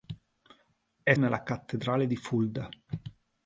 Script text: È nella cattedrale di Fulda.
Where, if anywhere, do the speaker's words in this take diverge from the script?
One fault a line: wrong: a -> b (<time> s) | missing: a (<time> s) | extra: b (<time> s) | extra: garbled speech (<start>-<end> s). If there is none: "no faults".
no faults